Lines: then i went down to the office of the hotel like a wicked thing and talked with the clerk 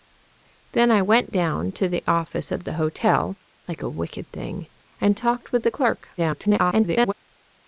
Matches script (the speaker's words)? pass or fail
fail